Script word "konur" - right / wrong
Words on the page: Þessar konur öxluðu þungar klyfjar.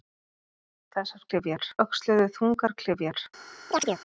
wrong